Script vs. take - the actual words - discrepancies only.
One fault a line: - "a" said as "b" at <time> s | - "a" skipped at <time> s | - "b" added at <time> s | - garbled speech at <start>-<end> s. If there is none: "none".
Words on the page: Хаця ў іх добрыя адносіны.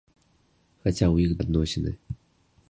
- "добрыя" skipped at 1.3 s